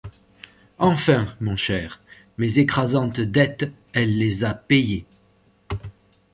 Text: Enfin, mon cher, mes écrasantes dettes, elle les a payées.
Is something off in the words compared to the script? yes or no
no